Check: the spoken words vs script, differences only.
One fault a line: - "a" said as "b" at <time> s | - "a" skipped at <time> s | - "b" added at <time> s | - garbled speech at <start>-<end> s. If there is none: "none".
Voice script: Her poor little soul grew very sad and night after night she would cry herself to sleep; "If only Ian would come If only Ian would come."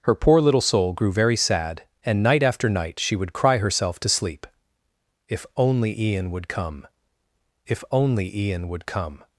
none